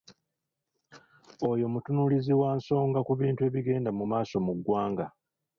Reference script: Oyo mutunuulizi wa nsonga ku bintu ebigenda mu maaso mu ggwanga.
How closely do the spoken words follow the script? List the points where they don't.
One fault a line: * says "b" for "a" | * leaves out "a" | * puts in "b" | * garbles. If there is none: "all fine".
all fine